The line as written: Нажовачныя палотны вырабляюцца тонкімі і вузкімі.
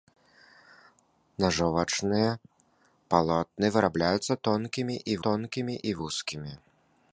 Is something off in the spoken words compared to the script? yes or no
yes